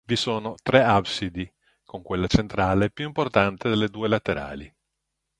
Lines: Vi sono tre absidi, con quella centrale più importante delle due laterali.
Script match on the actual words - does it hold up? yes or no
yes